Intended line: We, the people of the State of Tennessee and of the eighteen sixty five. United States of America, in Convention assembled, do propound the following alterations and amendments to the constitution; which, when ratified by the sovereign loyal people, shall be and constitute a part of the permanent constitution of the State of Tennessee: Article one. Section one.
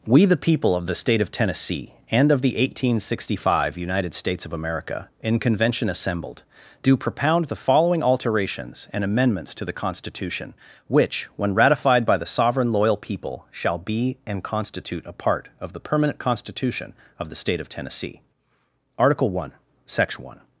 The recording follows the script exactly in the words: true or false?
true